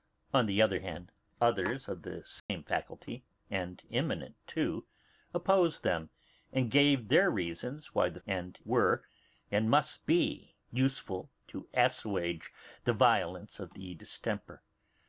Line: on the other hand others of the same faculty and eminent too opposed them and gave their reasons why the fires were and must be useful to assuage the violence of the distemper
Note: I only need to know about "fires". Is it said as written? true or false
false